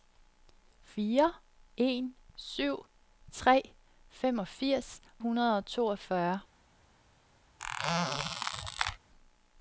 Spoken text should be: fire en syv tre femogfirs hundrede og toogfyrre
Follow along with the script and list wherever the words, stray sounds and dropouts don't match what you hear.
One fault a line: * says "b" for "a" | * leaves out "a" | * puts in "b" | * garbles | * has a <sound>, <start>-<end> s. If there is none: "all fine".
* has a squeak, 7.6-9.0 s